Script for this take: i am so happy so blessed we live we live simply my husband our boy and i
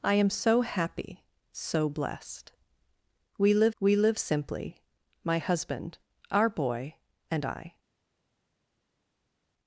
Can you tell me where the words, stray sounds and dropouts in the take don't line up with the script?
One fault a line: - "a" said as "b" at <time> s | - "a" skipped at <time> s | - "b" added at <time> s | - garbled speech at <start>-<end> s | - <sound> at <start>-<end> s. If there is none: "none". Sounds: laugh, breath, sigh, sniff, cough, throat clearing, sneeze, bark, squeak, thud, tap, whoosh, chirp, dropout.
none